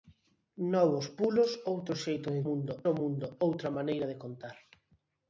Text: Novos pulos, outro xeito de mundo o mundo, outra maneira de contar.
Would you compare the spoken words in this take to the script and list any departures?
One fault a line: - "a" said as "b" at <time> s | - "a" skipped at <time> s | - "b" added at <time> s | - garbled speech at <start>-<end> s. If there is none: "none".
none